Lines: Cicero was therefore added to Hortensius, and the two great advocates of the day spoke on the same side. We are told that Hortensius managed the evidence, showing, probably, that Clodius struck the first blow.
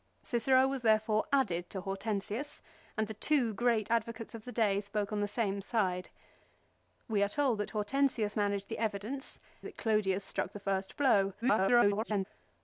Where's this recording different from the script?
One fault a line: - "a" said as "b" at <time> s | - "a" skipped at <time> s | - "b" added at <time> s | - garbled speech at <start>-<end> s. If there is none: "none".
- "showing probably" skipped at 9.4 s
- garbled speech at 11.4-12.3 s